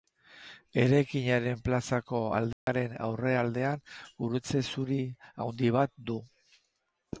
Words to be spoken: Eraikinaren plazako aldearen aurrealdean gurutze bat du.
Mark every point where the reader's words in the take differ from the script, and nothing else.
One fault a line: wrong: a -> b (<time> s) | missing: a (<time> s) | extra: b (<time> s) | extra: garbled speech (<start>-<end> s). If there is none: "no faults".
extra: zuri handi (4.7 s)